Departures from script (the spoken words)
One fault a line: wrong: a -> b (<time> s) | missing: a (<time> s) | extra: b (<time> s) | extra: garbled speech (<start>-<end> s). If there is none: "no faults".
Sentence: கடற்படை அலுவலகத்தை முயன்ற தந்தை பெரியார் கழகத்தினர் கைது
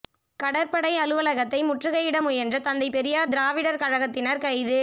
extra: முற்றுகையிட (1.6 s)
extra: திராவிடர் (3.3 s)